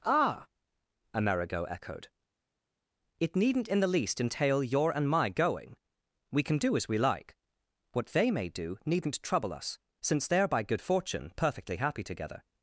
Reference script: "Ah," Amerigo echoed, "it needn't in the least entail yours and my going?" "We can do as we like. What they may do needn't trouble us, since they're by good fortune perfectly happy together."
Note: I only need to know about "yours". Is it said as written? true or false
false